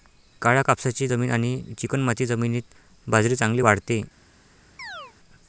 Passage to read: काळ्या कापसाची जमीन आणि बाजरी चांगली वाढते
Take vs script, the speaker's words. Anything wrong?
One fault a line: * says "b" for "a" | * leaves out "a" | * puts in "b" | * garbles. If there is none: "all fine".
* puts in "चिकणमाती जमिनीत"